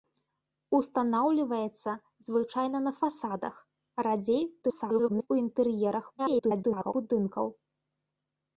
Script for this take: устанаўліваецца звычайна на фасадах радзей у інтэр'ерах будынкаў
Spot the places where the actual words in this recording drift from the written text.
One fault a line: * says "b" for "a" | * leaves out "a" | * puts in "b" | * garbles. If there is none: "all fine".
* garbles
* garbles